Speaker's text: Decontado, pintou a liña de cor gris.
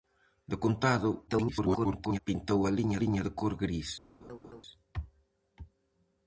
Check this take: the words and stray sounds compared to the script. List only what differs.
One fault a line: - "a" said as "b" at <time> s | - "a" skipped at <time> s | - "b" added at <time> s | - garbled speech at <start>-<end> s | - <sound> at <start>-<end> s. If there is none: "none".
- garbled speech at 1.3-2.2 s
- "liña" added at 3.0 s
- laugh at 4.2-4.6 s